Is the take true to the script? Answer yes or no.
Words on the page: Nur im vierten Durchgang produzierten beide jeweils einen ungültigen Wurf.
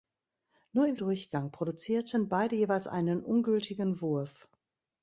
no